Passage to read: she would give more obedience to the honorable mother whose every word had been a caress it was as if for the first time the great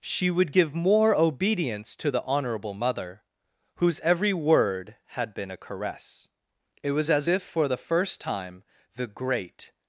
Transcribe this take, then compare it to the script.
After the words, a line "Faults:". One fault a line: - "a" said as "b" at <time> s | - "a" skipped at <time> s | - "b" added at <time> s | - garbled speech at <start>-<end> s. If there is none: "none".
she would give more obedience to the honorable mother whose every word had been a caress it was as if for the first time the great
Faults:
none